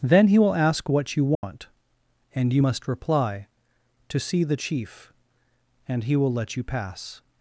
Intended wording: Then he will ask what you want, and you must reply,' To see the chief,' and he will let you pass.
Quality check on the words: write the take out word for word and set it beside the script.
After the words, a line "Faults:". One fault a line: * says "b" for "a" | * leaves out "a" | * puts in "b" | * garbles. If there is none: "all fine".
Then he will ask what you want, and you must reply,' To see the chief,' and he will let you pass.
Faults:
all fine